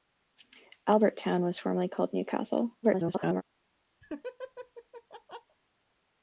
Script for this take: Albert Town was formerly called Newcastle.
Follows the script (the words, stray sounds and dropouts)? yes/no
no